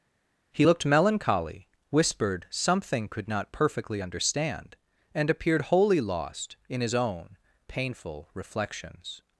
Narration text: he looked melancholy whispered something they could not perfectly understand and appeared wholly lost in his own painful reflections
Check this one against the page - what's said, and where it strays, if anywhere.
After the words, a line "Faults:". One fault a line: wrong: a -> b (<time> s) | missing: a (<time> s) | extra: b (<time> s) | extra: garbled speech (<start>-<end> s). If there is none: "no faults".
he looked melancholy whispered something could not perfectly understand and appeared wholly lost in his own painful reflections
Faults:
missing: they (3.1 s)